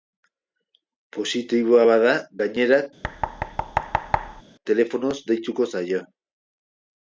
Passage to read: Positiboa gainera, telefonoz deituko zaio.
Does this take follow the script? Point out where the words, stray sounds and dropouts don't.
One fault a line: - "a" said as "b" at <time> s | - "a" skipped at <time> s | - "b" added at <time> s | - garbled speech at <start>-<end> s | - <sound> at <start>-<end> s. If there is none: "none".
- "bada" added at 1.9 s
- thud at 3.0-4.4 s